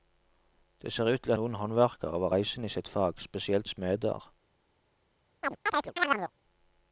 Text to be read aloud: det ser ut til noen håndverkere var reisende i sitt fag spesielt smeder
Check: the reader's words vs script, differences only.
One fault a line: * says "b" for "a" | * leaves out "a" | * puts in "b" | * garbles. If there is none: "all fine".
all fine